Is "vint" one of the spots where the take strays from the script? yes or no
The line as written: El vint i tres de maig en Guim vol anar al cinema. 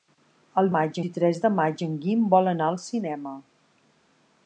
yes